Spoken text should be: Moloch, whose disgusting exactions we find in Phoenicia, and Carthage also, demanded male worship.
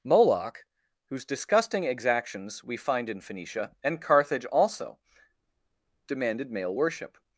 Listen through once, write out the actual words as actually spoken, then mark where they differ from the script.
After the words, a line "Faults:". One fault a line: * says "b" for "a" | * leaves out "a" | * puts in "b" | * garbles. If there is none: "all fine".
Moloch, whose disgusting exactions we find in Phoenicia, and Carthage also, demanded male worship.
Faults:
all fine